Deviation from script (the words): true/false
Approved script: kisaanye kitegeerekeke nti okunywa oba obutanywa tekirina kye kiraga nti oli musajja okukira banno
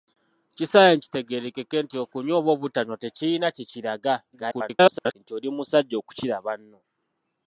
true